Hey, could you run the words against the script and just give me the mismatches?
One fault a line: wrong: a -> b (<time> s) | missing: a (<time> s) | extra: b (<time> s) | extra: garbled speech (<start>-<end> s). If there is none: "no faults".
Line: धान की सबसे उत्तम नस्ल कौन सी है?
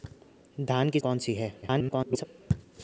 missing: सबसे उत्तम नस्ल (1.0 s)
extra: garbled speech (1.6-2.2 s)